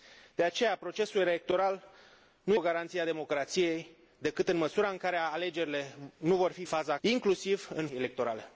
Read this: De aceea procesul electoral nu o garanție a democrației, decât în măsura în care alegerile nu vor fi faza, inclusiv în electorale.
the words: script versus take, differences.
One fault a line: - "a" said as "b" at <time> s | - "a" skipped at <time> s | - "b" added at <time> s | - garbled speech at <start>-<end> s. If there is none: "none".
none